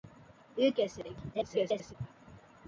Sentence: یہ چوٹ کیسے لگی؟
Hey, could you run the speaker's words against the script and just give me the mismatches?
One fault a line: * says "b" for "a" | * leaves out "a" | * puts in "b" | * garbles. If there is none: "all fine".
* leaves out "چوٹ"
* garbles